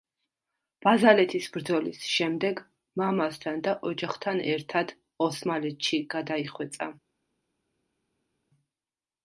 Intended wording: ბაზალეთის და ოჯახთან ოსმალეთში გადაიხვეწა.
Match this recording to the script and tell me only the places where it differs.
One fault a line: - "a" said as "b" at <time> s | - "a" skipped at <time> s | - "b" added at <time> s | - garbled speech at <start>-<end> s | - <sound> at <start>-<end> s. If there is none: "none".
- "ბრძოლის შემდეგ მამასთან" added at 1.6 s
- "ერთად" added at 4.5 s